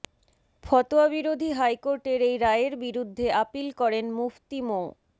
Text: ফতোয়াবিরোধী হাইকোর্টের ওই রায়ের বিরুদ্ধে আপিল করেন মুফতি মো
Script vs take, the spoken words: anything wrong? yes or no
yes